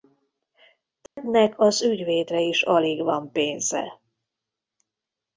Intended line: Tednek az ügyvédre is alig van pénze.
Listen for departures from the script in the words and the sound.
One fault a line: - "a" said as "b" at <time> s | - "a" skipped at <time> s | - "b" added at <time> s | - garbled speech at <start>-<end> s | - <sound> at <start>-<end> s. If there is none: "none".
- dropout at 1.1-1.2 s